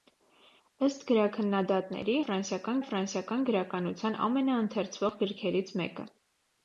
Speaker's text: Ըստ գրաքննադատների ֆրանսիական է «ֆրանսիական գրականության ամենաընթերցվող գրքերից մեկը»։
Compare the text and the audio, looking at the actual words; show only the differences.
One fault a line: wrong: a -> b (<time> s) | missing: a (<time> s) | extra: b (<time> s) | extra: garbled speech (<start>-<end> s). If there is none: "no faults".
no faults